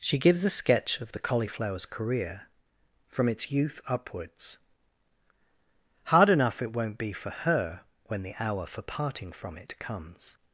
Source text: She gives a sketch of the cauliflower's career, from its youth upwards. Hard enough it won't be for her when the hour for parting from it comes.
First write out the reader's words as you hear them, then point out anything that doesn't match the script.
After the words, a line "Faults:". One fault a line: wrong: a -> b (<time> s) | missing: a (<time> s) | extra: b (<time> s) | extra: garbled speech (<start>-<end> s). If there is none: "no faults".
She gives a sketch of the cauliflower's career, from its youth upwards. Hard enough it won't be for her when the hour for parting from it comes.
Faults:
no faults